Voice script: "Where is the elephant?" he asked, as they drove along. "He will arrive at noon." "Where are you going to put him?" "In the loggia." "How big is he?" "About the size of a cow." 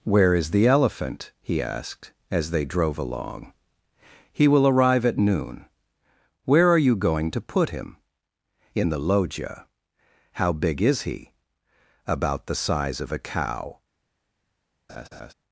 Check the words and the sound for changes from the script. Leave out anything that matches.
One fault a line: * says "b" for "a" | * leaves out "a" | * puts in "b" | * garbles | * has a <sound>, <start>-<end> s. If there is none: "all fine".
* has a laugh, 14.9-15.3 s